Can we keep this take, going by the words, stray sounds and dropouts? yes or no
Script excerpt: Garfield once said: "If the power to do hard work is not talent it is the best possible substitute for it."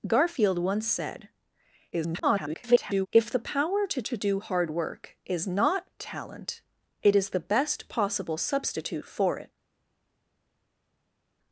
no